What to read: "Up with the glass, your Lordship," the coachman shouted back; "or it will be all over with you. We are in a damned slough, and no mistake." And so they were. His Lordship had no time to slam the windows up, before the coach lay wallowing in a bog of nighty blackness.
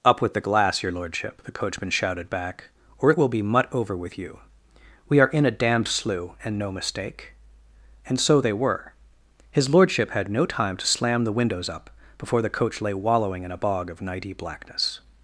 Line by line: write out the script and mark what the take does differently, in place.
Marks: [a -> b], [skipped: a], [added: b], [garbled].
"Up with the glass, your Lordship," the coachman shouted back; "or it will be [all -> mut] over with you. We are in a damned slough, and no mistake." And so they were. His Lordship had no time to slam the windows up, before the coach lay wallowing in a bog of nighty blackness.